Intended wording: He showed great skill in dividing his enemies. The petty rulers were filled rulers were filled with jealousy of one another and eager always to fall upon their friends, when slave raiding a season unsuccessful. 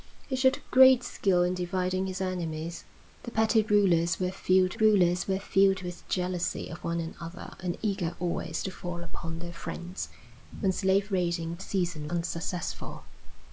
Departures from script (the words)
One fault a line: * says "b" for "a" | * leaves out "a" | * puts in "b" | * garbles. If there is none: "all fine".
all fine